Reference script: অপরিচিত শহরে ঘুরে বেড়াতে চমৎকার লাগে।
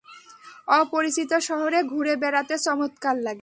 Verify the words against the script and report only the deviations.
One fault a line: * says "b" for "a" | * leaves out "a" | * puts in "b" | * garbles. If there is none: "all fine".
all fine